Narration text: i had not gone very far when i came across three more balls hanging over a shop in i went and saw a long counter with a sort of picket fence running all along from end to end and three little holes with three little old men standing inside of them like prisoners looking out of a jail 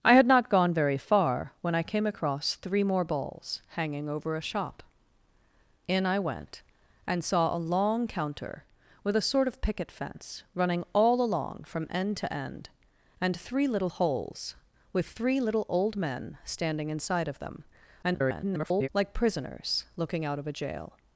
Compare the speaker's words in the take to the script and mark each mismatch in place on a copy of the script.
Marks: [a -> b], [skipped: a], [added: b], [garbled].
i had not gone very far when i came across three more balls hanging over a shop in i went and saw a long counter with a sort of picket fence running all along from end to end and three little holes with three little old men standing inside of them [garbled] like prisoners looking out of a jail